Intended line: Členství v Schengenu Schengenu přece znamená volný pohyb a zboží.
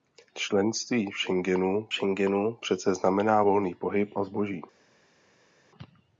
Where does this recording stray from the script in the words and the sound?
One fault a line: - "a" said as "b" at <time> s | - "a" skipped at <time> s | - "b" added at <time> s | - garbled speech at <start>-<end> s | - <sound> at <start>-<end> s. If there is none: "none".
none